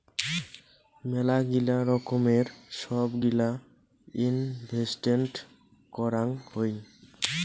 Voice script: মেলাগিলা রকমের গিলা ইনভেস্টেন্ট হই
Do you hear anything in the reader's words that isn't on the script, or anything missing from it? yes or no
yes